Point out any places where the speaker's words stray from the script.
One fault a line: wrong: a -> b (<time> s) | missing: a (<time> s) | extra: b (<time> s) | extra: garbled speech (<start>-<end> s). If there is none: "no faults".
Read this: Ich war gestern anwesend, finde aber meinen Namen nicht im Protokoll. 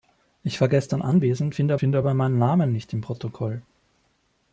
extra: finde (1.8 s)